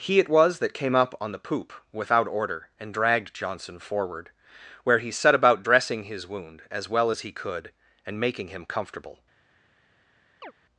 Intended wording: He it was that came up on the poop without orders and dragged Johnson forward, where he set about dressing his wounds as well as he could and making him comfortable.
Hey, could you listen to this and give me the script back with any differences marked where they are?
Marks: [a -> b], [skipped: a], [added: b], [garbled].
He it was that came up on the poop without [orders -> order] and dragged Johnson forward, where he set about dressing his [wounds -> wound] as well as he could and making him comfortable.